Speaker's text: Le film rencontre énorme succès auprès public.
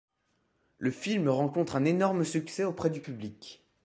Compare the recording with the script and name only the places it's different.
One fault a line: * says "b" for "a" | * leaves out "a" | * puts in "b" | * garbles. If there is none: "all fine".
* puts in "un"
* puts in "du"